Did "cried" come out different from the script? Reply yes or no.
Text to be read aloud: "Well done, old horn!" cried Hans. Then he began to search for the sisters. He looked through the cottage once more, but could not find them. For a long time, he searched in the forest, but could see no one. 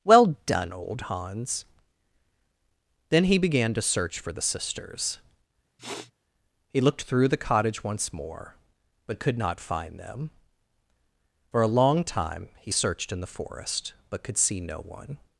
yes